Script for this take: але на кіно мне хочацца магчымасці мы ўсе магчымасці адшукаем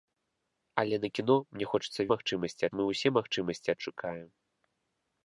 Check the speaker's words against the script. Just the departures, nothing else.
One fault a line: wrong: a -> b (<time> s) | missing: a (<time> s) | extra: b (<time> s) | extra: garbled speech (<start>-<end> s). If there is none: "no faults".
no faults